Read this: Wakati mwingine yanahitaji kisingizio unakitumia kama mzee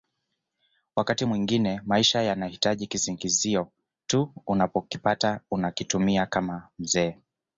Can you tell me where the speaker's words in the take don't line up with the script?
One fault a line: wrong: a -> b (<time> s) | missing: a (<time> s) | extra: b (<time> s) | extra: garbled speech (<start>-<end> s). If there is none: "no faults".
extra: maisha (1.9 s)
extra: tu unapokipata (4.1 s)